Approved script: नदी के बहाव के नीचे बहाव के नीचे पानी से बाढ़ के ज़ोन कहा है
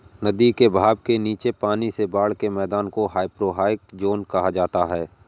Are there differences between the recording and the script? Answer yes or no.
yes